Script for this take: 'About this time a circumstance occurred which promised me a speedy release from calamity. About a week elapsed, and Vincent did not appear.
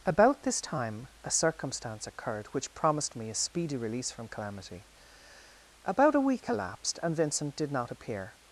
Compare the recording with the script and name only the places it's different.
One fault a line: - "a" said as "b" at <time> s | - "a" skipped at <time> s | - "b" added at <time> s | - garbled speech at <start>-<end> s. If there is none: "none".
none